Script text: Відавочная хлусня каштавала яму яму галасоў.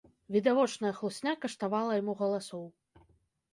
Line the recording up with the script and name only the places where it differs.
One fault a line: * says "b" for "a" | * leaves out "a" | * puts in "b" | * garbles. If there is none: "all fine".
* leaves out "яму"